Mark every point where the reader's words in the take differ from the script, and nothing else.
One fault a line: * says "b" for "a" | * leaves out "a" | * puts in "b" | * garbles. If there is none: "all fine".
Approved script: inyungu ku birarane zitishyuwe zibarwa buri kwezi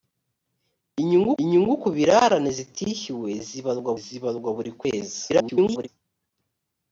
* puts in "inyungu"
* puts in "zibarwa"
* garbles